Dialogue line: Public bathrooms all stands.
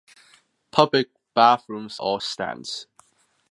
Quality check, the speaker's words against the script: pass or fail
pass